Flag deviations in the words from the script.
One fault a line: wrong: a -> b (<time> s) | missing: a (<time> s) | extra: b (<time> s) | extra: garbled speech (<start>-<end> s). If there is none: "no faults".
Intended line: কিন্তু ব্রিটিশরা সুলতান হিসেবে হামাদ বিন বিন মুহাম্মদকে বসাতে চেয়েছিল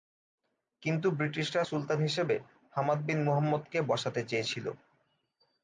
missing: বিন (3.2 s)